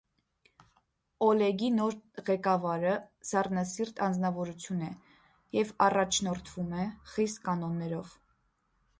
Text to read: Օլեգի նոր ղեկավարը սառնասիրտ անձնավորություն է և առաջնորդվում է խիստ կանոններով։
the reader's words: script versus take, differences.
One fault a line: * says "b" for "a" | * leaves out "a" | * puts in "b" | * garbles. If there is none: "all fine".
all fine